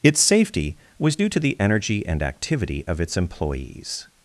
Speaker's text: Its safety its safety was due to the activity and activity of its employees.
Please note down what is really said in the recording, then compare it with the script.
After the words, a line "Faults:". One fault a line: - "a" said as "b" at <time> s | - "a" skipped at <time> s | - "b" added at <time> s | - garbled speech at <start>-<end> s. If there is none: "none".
Its safety was due to the energy and activity of its employees.
Faults:
- "its safety" skipped at 0.8 s
- "activity" said as "energy" at 1.6 s